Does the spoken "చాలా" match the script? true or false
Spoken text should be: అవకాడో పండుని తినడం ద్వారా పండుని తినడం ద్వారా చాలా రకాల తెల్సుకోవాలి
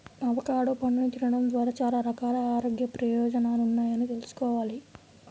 false